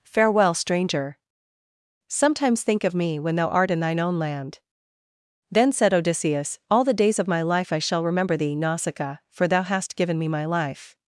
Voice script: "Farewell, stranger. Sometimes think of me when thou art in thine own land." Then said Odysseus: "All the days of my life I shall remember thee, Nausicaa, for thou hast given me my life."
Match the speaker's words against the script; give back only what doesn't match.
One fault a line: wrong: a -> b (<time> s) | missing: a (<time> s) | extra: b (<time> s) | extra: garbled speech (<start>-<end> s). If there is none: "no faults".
no faults